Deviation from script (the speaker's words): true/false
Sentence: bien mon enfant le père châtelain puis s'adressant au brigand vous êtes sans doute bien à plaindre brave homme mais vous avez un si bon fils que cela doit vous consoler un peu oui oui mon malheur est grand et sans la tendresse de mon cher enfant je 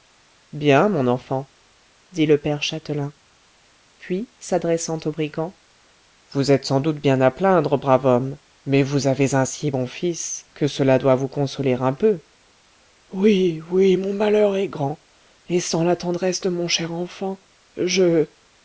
true